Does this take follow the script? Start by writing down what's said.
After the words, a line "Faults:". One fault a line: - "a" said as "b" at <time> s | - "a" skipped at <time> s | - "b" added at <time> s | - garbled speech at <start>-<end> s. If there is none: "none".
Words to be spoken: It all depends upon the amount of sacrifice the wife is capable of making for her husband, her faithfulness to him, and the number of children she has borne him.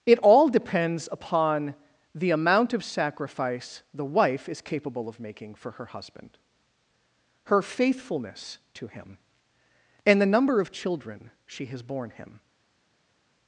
It all depends upon the amount of sacrifice the wife is capable of making for her husband, her faithfulness to him, and the number of children she has borne him.
Faults:
none